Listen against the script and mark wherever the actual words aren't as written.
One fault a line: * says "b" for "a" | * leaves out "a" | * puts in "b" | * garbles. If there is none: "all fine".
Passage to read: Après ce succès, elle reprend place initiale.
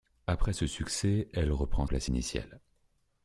all fine